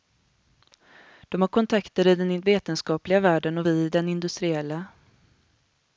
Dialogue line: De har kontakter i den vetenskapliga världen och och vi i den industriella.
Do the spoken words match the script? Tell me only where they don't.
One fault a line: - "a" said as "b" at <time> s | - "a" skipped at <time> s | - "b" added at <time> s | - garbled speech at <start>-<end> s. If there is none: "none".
- "och" skipped at 3.7 s